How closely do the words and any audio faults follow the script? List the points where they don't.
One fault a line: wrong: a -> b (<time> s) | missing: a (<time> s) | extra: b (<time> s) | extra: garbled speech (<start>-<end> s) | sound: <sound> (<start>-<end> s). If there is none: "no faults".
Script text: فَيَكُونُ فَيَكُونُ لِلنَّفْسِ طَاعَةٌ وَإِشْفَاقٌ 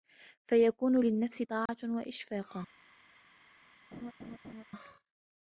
missing: فَيَكُونُ (1.1 s)
sound: dropout (1.7-1.7 s)
sound: laugh (3.9-4.6 s)